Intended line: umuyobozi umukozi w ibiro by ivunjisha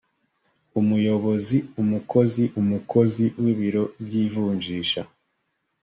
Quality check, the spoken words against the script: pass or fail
fail